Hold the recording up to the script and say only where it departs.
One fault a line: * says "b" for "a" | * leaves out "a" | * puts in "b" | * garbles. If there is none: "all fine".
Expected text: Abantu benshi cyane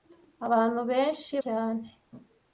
all fine